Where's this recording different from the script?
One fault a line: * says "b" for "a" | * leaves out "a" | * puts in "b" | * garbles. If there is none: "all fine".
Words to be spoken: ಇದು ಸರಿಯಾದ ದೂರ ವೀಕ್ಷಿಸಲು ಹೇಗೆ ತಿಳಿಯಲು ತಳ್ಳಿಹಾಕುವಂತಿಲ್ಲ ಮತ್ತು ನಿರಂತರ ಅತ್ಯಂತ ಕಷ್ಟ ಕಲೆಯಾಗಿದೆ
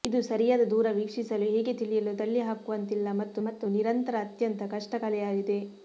* puts in "ಮತ್ತು"